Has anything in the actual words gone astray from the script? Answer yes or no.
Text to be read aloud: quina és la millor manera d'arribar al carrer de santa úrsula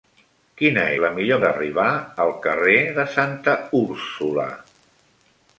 yes